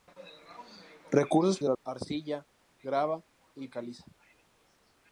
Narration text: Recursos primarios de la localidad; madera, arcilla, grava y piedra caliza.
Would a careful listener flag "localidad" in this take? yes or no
yes